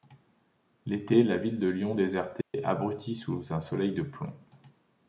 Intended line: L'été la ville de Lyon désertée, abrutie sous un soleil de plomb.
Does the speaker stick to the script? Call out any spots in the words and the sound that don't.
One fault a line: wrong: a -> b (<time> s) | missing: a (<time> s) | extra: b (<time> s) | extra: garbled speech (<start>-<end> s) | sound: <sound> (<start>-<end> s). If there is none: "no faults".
sound: dropout (2.4-2.5 s)